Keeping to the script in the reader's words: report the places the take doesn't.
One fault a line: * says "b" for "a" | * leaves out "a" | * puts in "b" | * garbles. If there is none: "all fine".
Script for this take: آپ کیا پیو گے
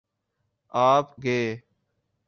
* leaves out "کیا پیو"